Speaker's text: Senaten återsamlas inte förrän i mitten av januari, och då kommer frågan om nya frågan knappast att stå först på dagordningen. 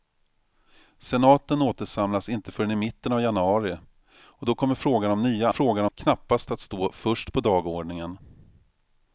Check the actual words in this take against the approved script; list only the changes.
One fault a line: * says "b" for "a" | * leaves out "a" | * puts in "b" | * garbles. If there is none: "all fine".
all fine